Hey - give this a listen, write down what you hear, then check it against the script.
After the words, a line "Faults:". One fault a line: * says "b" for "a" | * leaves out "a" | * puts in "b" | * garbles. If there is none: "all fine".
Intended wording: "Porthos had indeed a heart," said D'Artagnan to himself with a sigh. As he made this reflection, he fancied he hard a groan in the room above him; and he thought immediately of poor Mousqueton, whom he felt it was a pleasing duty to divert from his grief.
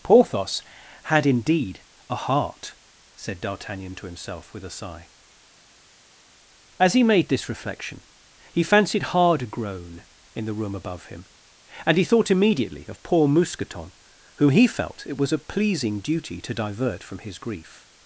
"Porthos had indeed a heart," said D'Artagnan to himself with a sigh. As he made this reflection, he fancied hard a groan in the room above him; and he thought immediately of poor Mousqueton, whom he felt it was a pleasing duty to divert from his grief.
Faults:
* leaves out "he"